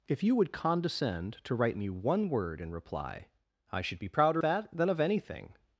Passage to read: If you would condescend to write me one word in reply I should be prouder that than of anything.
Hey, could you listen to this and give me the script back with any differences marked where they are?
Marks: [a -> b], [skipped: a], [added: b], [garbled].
If you would condescend to write me one word in reply I should be prouder that than of anything.